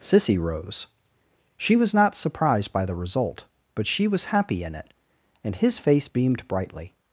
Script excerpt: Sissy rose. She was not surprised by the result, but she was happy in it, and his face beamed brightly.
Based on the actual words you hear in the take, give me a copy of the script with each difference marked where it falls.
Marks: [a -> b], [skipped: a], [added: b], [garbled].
Sissy rose. She was not surprised by the result, but she was happy in it, and his face beamed brightly.